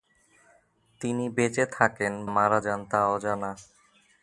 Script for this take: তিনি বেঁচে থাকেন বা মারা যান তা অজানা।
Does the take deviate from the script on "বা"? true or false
true